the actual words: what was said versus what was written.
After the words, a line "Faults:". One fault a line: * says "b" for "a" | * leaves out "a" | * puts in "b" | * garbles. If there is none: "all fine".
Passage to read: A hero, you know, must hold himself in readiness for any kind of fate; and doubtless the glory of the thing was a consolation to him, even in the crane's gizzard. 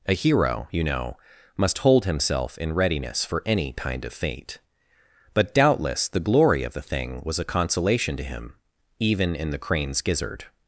A hero, you know, must hold himself in readiness for any kind of fate; but doubtless the glory of the thing was a consolation to him, even in the crane's gizzard.
Faults:
* says "but" for "and"